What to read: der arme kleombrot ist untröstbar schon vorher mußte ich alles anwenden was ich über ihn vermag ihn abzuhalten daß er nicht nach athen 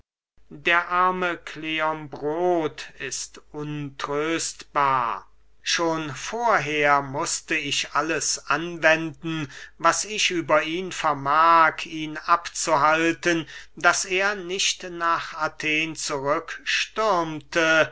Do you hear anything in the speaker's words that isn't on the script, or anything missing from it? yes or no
no